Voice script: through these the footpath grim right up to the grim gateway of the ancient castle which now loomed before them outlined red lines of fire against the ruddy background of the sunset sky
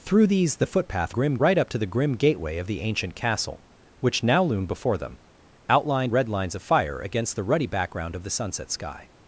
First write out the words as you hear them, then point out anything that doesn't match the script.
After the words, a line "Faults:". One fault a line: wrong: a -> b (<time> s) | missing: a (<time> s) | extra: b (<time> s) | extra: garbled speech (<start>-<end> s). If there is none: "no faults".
through these the footpath grim right up to the grim gateway of the ancient castle which now loomed before them outlined red lines of fire against the ruddy background of the sunset sky
Faults:
no faults